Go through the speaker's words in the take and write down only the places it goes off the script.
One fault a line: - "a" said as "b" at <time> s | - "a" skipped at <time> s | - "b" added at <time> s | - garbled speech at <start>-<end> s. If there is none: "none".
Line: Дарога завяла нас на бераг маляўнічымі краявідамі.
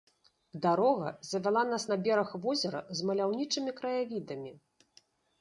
- "возера з" added at 2.5 s